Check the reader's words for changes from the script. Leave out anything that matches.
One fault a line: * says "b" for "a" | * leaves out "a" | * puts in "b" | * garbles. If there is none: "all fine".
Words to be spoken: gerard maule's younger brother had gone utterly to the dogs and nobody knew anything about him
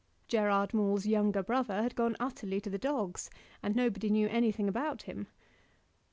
all fine